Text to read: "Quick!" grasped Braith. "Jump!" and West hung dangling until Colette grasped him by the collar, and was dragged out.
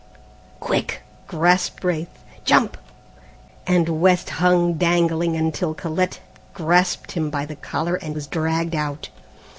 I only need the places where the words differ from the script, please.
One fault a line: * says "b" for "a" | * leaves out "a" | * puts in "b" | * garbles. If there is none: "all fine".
all fine